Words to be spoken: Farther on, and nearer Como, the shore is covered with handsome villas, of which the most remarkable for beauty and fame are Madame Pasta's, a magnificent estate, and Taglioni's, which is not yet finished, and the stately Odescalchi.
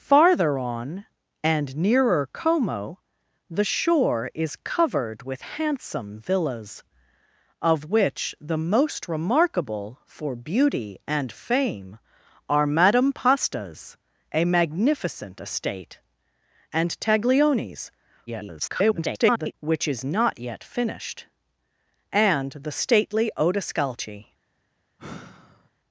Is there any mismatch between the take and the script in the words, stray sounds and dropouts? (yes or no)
yes